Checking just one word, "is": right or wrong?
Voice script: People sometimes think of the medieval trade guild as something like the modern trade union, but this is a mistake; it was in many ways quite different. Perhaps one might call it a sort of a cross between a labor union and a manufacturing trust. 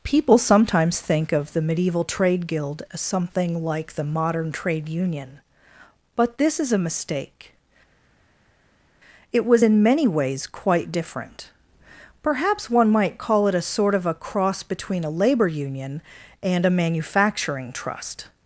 right